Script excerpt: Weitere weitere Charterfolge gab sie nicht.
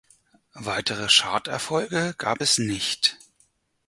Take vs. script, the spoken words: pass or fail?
fail